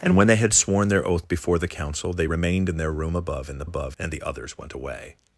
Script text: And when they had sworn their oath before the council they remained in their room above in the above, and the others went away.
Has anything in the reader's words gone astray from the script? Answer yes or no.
no